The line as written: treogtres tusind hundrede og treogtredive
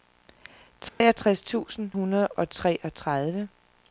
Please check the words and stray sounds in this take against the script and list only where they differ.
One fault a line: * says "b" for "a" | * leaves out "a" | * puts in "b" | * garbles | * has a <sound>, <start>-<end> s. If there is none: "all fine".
* has a dropout, 0.9-1.0 s